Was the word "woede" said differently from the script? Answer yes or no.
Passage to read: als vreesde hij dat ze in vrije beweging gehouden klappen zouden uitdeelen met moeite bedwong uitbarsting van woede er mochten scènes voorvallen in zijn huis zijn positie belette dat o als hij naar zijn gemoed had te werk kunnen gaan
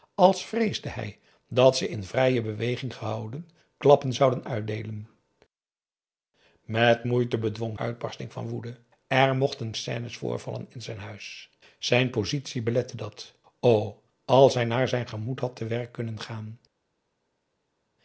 no